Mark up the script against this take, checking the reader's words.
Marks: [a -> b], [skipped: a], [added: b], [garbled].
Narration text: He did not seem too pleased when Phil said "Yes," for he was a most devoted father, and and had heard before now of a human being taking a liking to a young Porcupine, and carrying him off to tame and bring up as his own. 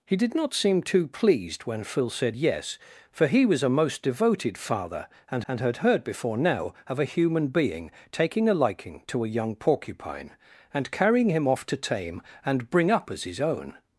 He did not seem too pleased when Phil said "Yes," for he was a most devoted father, and and had heard before now of a human being taking a liking to a young Porcupine, and carrying him off to tame and bring up as his own.